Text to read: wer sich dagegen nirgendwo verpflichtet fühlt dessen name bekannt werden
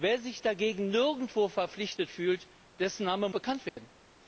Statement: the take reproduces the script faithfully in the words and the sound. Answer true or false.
false